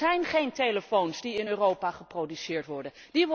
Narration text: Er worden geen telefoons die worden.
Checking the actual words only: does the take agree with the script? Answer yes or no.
no